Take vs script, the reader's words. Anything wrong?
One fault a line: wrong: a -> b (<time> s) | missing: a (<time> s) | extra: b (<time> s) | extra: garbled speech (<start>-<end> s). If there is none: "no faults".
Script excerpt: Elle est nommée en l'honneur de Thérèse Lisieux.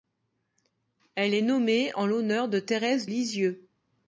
no faults